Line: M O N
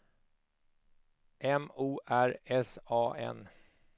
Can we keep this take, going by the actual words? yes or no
no